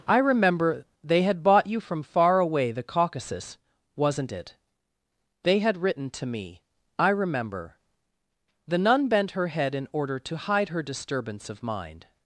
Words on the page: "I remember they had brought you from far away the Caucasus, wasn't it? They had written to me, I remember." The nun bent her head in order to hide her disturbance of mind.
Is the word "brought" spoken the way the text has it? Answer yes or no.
no